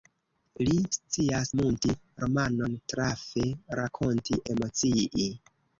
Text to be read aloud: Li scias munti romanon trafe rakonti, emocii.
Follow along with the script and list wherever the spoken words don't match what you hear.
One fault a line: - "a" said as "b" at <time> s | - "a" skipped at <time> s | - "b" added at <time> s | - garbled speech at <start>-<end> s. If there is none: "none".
none